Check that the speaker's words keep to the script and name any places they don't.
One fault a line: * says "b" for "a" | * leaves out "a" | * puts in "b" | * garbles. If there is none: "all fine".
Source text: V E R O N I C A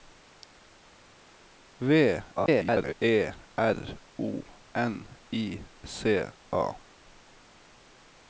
* garbles